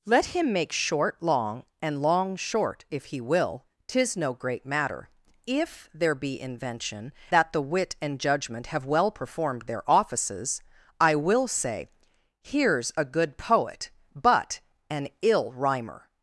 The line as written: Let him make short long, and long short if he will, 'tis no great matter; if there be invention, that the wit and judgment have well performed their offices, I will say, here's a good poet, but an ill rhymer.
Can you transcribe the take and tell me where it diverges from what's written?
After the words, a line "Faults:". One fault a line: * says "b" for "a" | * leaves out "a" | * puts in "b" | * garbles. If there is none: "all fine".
Let him make short long, and long short if he will, 'tis no great matter; if there be invention, that the wit and judgment have well performed their offices, I will say, here's a good poet, but an ill rhymer.
Faults:
all fine